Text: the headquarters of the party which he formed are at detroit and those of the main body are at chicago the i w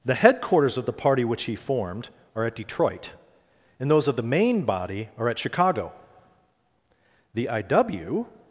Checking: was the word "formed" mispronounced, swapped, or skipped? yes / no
no